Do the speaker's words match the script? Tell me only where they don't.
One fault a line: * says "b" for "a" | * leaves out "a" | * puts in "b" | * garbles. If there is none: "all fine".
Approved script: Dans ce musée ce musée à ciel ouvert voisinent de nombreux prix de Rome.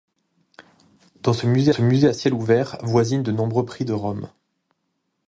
all fine